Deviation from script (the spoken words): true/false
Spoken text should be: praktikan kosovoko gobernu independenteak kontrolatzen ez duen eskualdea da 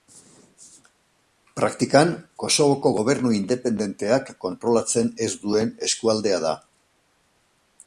false